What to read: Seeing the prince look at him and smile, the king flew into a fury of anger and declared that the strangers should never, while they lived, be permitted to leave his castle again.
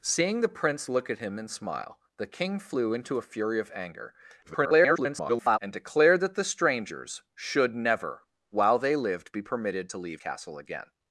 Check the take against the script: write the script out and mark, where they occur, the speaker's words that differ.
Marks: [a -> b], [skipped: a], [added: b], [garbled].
Seeing the prince look at him and smile, the king flew into a fury of anger [garbled] and declared that the strangers should never, while they lived, be permitted to leave [skipped: his] castle again.